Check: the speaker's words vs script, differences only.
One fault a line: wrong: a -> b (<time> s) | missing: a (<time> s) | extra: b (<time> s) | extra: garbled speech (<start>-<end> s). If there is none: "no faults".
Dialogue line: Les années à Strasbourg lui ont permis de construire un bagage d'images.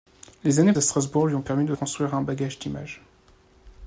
no faults